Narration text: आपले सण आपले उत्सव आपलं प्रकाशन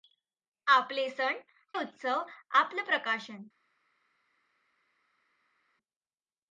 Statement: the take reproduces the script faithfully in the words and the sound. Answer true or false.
false